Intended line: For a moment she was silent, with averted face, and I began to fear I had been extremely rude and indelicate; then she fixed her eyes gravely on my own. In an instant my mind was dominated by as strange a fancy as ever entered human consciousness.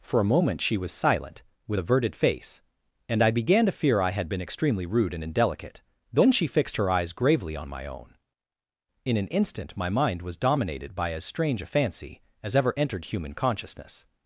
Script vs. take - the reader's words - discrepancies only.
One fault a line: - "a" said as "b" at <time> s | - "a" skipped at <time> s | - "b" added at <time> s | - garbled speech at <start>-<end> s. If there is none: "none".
none